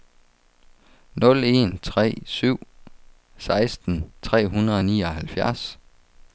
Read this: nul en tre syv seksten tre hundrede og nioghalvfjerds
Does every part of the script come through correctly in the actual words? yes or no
yes